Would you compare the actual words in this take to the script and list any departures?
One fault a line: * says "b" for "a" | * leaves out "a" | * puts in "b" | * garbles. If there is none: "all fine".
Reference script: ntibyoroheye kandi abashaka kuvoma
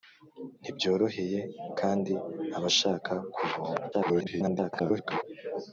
* garbles